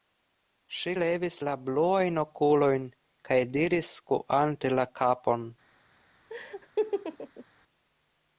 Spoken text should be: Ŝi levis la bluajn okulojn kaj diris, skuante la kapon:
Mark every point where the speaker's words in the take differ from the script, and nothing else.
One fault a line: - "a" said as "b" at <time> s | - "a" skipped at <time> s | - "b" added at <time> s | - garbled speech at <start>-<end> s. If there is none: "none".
none